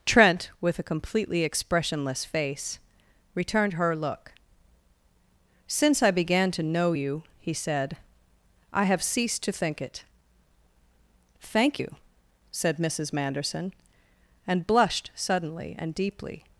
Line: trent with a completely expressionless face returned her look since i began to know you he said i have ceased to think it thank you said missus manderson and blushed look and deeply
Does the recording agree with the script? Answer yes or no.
no